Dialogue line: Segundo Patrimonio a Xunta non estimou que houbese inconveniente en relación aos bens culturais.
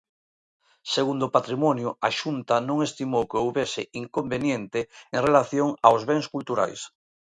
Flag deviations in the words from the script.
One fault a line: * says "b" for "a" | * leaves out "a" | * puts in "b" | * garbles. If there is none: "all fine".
all fine